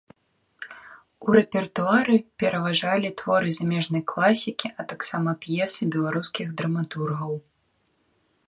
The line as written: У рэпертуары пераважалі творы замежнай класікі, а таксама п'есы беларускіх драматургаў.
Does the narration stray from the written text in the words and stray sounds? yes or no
no